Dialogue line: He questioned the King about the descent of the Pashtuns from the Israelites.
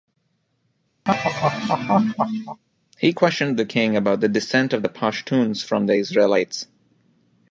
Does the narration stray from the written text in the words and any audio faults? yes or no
yes